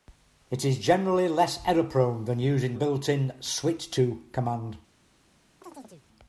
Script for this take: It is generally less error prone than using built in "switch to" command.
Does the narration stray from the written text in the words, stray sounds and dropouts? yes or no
yes